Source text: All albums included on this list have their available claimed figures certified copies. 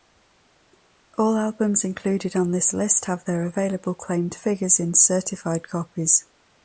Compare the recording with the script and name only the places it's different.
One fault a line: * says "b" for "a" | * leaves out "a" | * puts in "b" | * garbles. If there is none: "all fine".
* puts in "in"